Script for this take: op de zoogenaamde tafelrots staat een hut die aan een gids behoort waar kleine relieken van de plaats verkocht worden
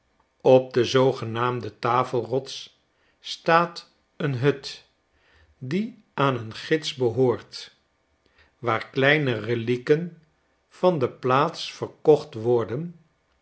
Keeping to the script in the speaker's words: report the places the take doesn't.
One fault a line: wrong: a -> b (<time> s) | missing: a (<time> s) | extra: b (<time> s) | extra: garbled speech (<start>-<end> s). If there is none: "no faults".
no faults